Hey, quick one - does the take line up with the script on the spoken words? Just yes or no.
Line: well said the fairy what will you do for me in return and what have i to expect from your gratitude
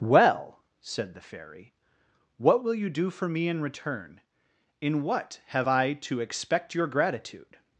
no